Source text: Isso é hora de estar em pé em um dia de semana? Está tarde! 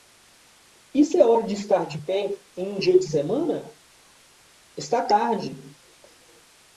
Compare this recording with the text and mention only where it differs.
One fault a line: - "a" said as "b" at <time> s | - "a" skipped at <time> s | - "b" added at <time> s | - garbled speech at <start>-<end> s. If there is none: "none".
- "em" said as "de" at 1.9 s